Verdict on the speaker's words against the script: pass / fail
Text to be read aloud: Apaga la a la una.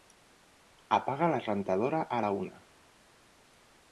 fail